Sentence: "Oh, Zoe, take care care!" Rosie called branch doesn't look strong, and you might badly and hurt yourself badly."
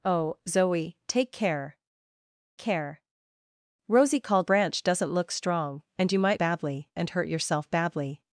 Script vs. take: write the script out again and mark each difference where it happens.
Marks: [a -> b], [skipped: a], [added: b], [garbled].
"Oh, Zoe, take care care!" Rosie called branch doesn't look strong, and you might badly and hurt yourself badly."